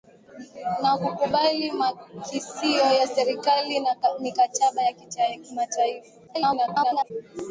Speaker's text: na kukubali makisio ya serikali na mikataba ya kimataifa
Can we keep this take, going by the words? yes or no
no